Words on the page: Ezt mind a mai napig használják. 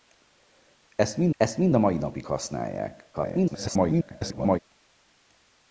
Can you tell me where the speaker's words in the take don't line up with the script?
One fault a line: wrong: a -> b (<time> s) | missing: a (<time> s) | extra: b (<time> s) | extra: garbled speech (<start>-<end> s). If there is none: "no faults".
extra: ezt mind (1.4 s)
extra: garbled speech (3.1-4.6 s)